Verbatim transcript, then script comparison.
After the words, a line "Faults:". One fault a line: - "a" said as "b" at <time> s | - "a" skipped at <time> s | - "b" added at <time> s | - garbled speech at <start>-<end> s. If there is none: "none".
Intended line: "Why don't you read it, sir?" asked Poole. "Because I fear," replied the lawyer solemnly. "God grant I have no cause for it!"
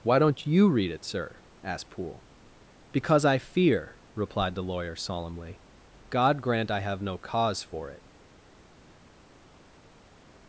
"Why don't you read it, sir?" asked Poole. "Because I fear," replied the lawyer solemnly. "God grant I have no cause for it!"
Faults:
none